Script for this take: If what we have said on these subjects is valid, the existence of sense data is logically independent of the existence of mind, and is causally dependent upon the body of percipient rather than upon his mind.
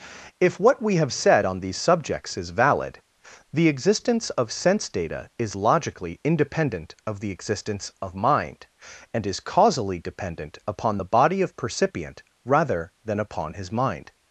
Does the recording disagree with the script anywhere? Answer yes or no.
no